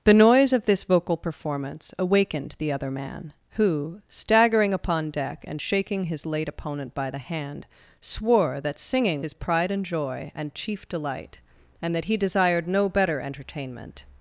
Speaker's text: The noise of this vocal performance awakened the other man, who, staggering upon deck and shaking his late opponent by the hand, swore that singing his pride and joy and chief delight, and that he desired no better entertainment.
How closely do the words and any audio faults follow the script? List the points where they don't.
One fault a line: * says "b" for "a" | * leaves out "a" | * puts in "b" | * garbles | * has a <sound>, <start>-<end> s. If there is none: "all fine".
all fine